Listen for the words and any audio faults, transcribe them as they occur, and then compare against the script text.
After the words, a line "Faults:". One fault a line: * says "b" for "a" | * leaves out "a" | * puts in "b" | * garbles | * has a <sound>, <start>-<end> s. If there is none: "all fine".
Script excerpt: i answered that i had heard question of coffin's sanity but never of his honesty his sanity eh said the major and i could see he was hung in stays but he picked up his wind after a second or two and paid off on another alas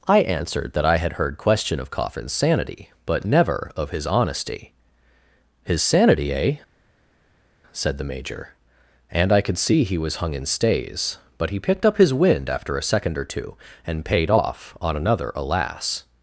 i answered that i had heard question of coffin's sanity but never of his honesty his sanity eh said the major and i could see he was hung in stays but he picked up his wind after a second or two and paid off on another alas
Faults:
all fine